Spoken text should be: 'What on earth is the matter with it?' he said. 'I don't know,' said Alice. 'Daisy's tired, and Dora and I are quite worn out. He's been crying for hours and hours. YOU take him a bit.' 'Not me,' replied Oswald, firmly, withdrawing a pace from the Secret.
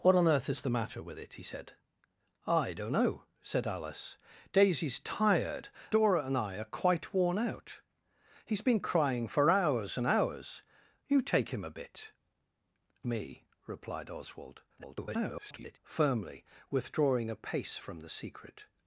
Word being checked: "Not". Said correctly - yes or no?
no